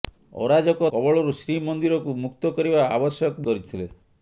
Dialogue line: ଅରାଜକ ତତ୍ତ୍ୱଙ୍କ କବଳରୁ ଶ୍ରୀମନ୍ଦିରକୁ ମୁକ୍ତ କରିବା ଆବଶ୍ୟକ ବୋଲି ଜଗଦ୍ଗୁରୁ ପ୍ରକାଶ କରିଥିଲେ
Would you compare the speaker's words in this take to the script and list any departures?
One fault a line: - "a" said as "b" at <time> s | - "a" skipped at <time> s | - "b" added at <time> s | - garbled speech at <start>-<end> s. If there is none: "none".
- "ତତ୍ତ୍ୱଙ୍କ" skipped at 0.9 s
- "ବୋଲି ଜଗଦ୍ଗୁରୁ ପ୍ରକାଶ" skipped at 3.4 s